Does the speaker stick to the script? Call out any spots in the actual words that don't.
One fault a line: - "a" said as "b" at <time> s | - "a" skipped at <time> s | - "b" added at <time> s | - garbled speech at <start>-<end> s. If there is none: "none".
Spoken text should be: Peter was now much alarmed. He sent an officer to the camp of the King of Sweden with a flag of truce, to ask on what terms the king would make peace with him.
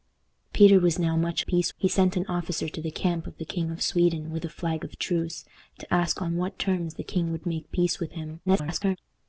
- "alarmed" said as "peace" at 1.5 s
- garbled speech at 8.5-9.0 s